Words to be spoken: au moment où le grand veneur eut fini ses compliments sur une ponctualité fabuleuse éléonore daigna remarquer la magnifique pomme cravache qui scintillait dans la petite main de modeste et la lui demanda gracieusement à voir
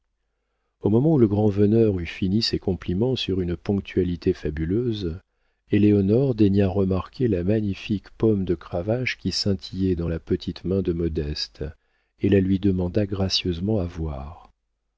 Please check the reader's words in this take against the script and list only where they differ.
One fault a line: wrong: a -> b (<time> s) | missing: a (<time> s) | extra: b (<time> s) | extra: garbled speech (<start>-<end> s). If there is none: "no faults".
extra: de (8.4 s)